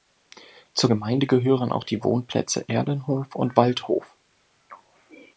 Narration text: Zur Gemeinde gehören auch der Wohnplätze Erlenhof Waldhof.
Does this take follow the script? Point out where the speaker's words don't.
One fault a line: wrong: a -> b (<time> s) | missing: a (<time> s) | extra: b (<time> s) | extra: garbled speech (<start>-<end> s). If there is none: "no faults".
wrong: der -> die (1.8 s)
extra: und (3.3 s)